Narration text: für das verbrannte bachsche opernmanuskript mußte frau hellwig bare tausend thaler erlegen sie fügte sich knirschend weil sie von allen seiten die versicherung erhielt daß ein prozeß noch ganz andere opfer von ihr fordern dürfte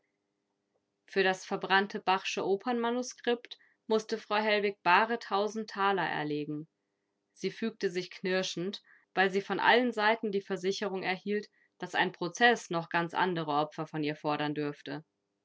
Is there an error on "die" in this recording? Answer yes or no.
no